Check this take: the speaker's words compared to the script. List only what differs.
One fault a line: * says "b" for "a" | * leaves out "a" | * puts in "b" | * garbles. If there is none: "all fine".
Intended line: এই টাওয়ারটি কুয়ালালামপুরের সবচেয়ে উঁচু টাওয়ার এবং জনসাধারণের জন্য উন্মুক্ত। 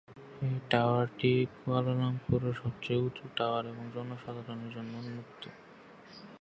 all fine